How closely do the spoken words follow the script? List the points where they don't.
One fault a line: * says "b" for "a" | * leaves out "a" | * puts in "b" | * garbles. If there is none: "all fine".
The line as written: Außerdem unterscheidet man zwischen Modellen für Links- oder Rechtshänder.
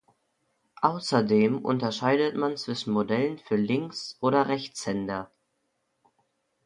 all fine